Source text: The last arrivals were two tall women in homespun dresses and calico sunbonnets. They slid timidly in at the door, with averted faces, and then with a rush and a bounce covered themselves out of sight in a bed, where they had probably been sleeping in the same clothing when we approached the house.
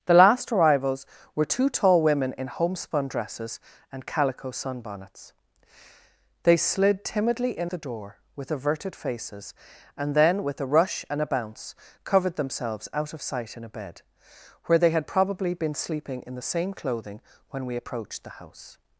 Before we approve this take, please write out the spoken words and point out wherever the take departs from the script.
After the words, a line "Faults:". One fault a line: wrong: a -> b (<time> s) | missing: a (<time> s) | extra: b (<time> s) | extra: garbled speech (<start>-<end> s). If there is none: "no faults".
The last arrivals were two tall women in homespun dresses and calico sunbonnets. They slid timidly in the door, with averted faces, and then with a rush and a bounce covered themselves out of sight in a bed, where they had probably been sleeping in the same clothing when we approached the house.
Faults:
missing: at (7.7 s)